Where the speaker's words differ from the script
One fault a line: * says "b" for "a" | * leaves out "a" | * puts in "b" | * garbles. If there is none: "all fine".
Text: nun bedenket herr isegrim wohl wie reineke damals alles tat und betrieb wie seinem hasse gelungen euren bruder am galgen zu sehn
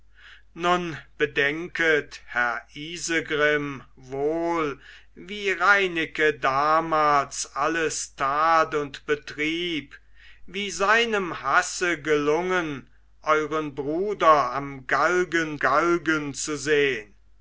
* puts in "galgen"